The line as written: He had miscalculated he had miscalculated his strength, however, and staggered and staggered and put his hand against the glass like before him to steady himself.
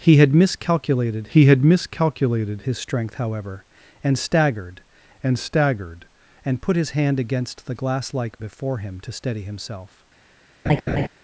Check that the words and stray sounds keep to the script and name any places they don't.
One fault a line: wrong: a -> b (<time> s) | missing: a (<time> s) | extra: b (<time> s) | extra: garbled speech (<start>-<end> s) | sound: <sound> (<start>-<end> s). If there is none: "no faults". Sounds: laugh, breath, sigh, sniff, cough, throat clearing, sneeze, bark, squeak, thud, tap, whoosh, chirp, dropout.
sound: laugh (10.7-11.1 s)